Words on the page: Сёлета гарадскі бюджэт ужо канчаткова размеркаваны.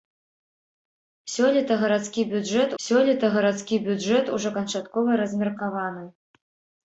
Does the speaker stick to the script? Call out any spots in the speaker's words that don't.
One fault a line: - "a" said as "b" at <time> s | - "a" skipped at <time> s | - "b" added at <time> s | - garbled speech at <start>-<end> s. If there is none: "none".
- "сёлета гарадскі бюджэт" added at 2.8 s